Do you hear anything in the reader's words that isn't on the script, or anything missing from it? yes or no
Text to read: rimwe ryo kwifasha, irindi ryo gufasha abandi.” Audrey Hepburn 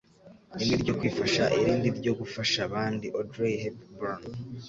no